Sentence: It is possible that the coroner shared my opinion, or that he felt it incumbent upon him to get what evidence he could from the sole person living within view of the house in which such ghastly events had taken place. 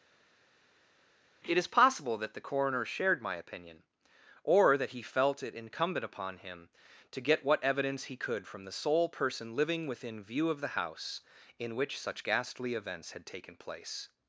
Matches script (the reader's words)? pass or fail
pass